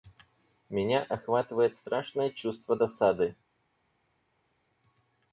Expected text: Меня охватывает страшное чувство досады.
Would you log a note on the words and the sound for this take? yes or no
no